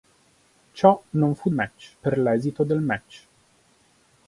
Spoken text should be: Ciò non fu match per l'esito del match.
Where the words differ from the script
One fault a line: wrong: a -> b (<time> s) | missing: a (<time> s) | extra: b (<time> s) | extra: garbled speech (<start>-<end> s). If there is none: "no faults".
no faults